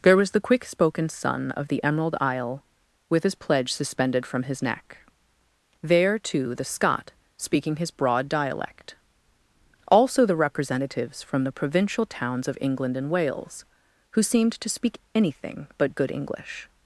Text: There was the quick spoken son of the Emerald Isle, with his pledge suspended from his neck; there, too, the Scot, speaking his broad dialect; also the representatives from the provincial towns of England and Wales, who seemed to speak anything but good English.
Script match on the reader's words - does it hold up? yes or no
yes